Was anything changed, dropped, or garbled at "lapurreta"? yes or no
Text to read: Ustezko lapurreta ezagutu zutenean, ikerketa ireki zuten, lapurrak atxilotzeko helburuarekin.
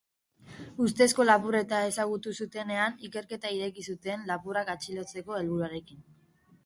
no